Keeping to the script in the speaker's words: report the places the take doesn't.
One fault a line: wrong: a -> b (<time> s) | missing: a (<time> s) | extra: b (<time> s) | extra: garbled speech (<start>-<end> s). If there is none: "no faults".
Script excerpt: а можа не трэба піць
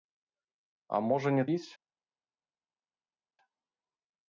missing: трэба (1.4 s)